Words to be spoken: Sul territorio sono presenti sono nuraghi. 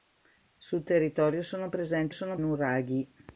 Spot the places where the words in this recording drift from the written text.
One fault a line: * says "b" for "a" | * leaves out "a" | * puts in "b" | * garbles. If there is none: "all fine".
all fine